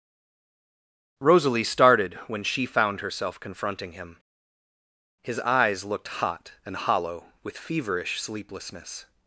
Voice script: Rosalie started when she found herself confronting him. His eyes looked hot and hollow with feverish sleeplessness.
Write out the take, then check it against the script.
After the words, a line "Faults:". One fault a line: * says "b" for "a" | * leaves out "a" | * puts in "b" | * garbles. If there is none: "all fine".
Rosalie started when she found herself confronting him. His eyes looked hot and hollow with feverish sleeplessness.
Faults:
all fine